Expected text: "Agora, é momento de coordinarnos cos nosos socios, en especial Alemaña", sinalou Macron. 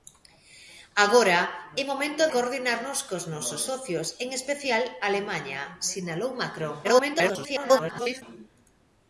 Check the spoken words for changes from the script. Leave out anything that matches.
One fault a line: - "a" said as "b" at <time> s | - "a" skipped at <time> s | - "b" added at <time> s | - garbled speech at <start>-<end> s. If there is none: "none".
- "de" skipped at 2.2 s
- garbled speech at 6.8-8.2 s